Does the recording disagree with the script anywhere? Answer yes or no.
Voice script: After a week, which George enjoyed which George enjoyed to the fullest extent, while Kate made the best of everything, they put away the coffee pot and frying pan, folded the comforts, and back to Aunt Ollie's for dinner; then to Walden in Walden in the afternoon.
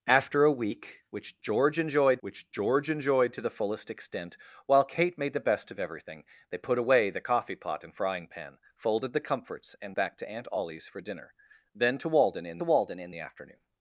no